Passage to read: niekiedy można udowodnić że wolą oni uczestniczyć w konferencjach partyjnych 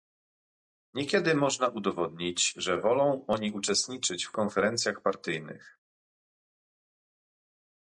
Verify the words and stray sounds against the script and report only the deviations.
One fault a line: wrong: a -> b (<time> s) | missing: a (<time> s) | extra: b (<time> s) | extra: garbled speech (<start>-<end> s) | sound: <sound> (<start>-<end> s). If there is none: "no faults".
no faults